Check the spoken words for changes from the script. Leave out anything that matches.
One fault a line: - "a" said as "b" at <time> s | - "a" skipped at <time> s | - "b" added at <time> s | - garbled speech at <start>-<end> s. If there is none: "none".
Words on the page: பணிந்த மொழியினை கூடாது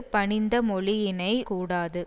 none